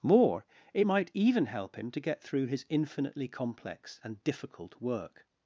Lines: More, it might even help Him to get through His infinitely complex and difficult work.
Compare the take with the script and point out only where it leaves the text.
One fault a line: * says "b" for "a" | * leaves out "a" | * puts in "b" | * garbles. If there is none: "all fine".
all fine